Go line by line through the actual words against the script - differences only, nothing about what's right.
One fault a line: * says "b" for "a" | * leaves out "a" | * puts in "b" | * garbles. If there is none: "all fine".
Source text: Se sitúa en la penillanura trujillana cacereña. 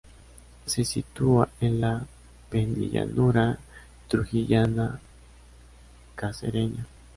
all fine